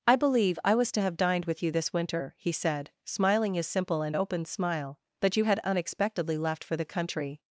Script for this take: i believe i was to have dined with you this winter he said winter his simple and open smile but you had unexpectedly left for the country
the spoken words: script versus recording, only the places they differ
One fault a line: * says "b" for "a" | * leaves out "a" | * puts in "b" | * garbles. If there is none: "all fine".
* says "smiling" for "winter"